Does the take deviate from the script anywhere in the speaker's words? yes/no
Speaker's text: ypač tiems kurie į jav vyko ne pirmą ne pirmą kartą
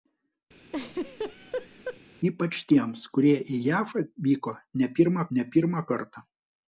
no